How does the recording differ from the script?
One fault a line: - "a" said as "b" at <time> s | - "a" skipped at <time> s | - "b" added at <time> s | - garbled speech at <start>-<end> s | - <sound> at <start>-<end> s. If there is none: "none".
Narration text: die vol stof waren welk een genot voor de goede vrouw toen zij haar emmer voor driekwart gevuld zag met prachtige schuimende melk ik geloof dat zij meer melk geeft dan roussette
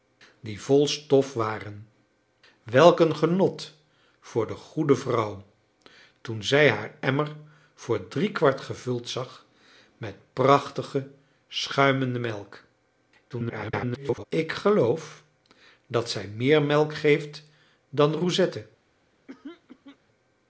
- garbled speech at 13.3-14.2 s
- throat clearing at 19.3-20.0 s